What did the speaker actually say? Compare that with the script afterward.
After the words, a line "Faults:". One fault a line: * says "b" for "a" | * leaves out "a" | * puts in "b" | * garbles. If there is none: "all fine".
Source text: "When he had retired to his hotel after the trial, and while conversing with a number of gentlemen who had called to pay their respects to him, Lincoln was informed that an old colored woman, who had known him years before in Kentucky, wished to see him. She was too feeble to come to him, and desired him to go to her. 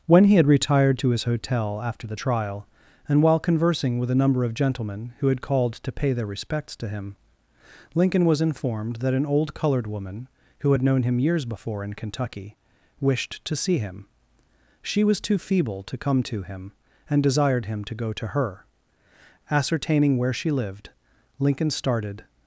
"When he had retired to his hotel after the trial, and while conversing with a number of gentlemen who had called to pay their respects to him, Lincoln was informed that an old colored woman, who had known him years before in Kentucky, wished to see him. She was too feeble to come to him, and desired him to go to her. Ascertaining where she lived, Lincoln started
Faults:
* puts in "Ascertaining where she lived Lincoln started"